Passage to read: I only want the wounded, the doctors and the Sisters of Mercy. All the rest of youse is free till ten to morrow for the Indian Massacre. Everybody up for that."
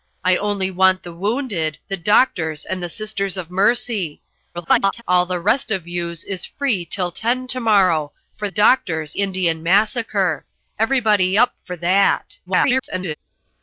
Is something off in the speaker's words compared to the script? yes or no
yes